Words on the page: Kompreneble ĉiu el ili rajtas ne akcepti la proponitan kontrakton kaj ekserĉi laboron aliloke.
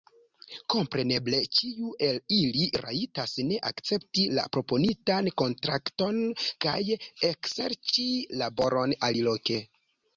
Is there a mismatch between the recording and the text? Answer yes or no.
no